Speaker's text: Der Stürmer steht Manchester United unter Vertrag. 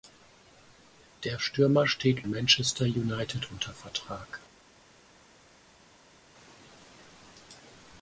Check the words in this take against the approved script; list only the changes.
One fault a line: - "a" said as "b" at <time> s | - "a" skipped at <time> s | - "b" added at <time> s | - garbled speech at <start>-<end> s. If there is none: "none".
none